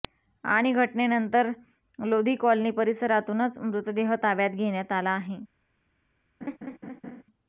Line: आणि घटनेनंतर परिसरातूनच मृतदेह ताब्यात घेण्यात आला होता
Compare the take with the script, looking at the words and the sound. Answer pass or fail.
fail